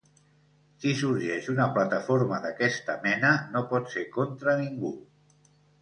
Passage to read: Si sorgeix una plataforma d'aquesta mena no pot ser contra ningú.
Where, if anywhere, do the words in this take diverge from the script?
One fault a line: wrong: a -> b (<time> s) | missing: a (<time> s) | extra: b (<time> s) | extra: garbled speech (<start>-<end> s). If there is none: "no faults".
no faults